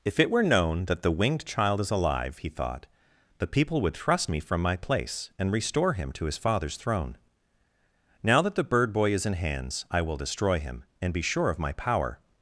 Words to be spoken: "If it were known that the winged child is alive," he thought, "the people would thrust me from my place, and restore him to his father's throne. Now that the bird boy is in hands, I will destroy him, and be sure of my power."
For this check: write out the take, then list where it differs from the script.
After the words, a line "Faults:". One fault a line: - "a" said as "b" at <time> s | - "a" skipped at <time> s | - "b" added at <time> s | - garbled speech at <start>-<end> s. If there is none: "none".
"If it were known that the winged child is alive," he thought, "the people would thrust me from my place, and restore him to his father's throne. Now that the bird boy is in hands, I will destroy him, and be sure of my power."
Faults:
none